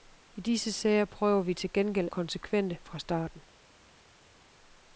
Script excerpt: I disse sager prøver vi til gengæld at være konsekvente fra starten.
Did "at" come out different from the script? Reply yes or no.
yes